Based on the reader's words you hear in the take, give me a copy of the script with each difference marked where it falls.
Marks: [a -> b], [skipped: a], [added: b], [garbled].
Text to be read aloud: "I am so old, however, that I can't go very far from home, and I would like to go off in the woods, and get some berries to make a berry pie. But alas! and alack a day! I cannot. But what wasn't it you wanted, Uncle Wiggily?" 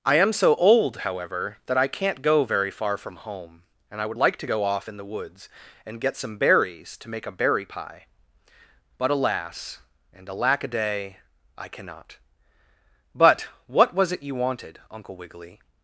"I am so old, however, that I can't go very far from home, and I would like to go off in the woods, and get some berries to make a berry pie. But alas! and alack a day! I cannot. But what [wasn't -> was] it you wanted, Uncle Wiggily?"